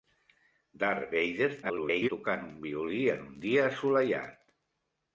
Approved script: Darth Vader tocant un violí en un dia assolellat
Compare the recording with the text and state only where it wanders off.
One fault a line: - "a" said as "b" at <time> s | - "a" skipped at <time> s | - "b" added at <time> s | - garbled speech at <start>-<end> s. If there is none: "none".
- garbled speech at 1.6-2.1 s